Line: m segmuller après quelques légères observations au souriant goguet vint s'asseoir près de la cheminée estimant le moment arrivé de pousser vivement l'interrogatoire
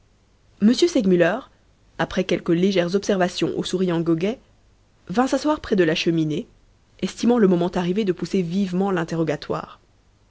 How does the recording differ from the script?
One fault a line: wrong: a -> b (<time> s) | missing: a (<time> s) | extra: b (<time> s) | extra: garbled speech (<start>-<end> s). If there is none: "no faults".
no faults